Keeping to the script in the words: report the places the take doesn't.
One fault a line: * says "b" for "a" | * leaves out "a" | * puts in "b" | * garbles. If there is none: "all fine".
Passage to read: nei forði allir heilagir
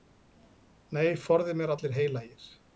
* puts in "mér"